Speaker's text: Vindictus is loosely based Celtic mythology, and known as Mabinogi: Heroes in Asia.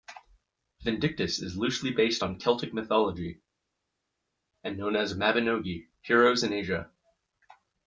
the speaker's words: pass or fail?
fail